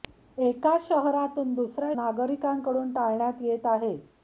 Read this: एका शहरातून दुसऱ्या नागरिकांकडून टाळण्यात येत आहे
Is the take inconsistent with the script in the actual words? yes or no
no